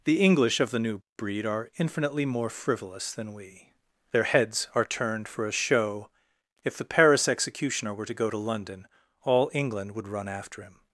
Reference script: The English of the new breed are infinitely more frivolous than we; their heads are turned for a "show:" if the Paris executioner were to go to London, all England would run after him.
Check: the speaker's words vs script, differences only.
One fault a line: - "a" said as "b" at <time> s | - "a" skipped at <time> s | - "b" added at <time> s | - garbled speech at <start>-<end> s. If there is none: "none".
none